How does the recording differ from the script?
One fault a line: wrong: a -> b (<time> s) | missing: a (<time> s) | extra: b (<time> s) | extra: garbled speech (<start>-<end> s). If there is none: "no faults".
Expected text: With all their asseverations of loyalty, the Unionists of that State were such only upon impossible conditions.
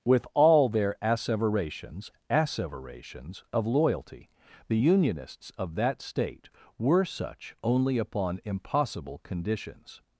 extra: asseverations (2.3 s)